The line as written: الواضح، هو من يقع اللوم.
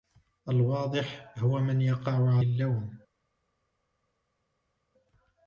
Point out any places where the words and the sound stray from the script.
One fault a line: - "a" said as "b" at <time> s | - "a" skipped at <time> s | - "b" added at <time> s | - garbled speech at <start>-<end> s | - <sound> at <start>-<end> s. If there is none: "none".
none